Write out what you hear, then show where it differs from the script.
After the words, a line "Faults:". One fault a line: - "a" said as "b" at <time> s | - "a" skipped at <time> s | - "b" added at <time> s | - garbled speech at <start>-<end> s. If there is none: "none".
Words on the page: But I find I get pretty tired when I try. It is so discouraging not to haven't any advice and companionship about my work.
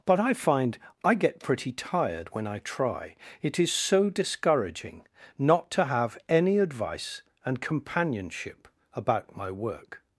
But I find I get pretty tired when I try. It is so discouraging not to have any advice and companionship about my work.
Faults:
- "haven't" said as "have" at 5.9 s